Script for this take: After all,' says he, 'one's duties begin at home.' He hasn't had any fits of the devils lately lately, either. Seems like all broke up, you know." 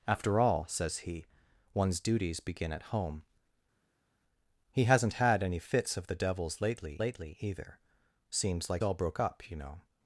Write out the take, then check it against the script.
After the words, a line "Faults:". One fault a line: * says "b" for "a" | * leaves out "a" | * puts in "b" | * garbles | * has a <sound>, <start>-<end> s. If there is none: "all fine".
After all,' says he, 'one's duties begin at home.' He hasn't had any fits of the devils lately lately, either. Seems like all broke up, you know."
Faults:
all fine